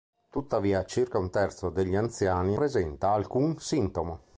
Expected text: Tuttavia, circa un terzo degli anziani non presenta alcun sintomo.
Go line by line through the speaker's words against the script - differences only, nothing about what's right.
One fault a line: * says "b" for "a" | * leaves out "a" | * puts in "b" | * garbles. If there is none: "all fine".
* leaves out "non"